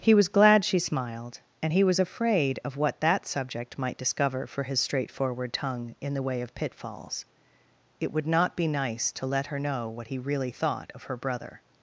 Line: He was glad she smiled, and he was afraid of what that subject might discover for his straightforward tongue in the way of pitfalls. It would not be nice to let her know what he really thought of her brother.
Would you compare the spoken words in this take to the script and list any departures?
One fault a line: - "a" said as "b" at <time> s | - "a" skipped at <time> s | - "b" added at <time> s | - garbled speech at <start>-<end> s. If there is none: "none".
none